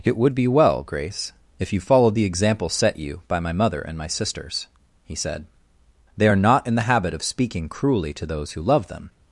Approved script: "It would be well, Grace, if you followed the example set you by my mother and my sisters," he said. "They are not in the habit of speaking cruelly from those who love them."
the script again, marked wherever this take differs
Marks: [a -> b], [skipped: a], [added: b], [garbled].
"It would be well, Grace, if you followed the example set you by my mother and my sisters," he said. "They are not in the habit of speaking cruelly [from -> to] those who love them."